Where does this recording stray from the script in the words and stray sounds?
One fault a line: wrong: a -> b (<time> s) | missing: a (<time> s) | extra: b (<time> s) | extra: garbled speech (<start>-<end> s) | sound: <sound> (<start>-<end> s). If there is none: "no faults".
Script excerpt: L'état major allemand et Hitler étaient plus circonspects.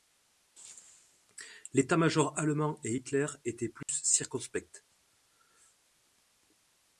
sound: dropout (3.8-3.9 s)